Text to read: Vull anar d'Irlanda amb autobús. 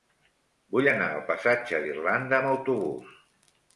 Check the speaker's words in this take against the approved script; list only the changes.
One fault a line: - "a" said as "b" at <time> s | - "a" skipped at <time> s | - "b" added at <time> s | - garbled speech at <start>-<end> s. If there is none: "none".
- "al passatge" added at 1.1 s